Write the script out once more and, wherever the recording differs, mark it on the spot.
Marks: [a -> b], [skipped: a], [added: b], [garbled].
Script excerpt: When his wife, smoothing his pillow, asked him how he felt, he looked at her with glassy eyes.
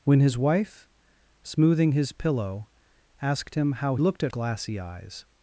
When his wife, smoothing his pillow, asked him how [skipped: he felt, he] looked at [skipped: her with] glassy eyes.